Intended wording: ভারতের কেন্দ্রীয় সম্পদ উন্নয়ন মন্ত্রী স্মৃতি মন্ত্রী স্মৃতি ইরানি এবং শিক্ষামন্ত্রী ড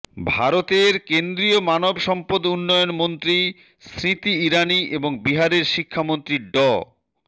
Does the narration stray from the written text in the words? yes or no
yes